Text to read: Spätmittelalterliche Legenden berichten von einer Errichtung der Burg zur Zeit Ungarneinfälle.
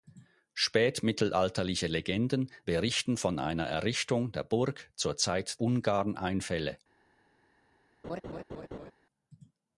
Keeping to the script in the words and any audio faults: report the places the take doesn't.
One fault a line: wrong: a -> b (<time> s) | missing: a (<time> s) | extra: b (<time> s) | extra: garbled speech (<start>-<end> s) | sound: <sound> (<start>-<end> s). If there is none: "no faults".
sound: laugh (8.0-8.9 s)